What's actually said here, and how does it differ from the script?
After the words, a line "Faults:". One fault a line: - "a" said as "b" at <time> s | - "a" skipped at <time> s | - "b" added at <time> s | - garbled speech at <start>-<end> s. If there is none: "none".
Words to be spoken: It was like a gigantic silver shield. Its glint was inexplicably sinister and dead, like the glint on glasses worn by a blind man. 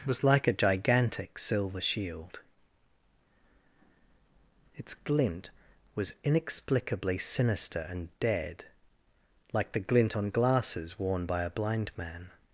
was like a gigantic silver shield. Its glint was inexplicably sinister and dead, like the glint on glasses worn by a blind man.
Faults:
- "It" skipped at 0.1 s